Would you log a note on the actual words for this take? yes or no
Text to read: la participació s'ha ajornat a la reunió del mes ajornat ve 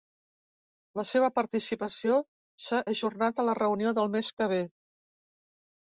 yes